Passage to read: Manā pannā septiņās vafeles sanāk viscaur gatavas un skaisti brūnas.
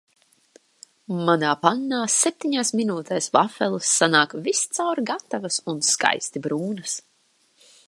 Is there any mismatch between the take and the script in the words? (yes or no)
yes